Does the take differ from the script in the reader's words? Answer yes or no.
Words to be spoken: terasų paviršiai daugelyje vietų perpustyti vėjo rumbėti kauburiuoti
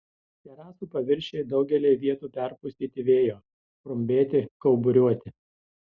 no